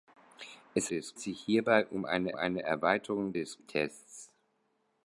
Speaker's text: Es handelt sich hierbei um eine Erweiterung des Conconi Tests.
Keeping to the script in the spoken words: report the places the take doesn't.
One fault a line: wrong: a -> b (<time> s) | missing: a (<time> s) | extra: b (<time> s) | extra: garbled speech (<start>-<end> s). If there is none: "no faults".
wrong: handelt -> des (0.9 s)
extra: eine (2.3 s)
missing: Conconi (3.6 s)